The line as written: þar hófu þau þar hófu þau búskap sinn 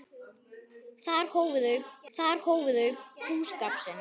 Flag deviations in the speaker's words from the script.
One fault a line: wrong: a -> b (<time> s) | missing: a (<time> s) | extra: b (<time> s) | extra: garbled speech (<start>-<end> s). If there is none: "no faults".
no faults